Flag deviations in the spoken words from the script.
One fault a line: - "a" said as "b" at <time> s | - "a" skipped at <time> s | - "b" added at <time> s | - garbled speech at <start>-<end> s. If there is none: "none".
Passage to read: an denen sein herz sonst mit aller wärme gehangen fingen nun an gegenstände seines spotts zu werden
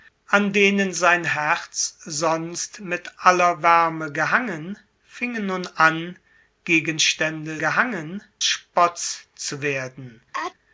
- "seines" said as "gehangen" at 7.6 s